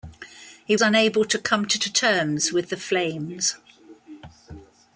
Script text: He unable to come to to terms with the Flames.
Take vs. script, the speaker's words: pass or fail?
pass